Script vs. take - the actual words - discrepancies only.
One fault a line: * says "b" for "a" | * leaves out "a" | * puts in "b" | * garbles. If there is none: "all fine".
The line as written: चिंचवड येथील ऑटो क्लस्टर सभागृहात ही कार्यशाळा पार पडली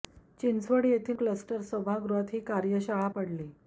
* leaves out "ऑटो"
* leaves out "पार"